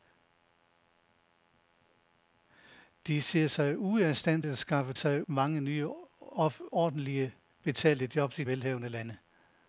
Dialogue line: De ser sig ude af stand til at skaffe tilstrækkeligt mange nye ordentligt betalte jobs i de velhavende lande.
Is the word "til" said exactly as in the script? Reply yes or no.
no